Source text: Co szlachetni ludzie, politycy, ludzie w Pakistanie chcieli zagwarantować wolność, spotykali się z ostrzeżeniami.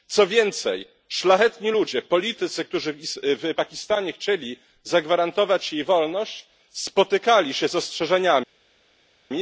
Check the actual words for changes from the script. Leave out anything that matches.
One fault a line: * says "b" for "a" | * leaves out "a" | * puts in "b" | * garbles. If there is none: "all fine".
* puts in "więcej"
* says "którzy" for "ludzie"
* puts in "jej"